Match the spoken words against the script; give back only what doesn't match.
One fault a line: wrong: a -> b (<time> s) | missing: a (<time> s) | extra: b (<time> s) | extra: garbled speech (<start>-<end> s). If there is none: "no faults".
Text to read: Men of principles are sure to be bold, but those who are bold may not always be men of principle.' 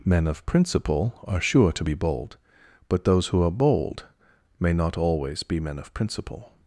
wrong: principles -> principle (0.5 s)